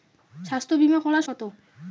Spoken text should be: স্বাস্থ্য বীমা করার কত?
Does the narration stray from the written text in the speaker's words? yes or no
no